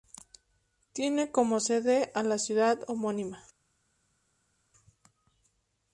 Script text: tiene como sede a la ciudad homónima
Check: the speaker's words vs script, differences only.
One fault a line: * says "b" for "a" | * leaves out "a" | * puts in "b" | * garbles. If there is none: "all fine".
all fine